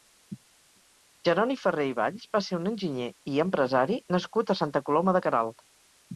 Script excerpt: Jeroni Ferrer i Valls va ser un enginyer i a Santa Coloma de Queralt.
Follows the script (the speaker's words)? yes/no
no